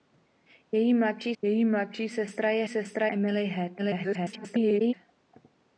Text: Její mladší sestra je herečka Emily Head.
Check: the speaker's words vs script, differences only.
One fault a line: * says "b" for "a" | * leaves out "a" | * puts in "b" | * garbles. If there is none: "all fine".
* puts in "její mladší"
* says "sestra" for "herečka"
* garbles